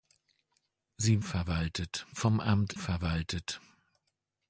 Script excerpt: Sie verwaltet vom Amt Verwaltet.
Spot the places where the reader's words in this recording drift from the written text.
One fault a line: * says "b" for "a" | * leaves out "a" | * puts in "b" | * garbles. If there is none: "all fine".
all fine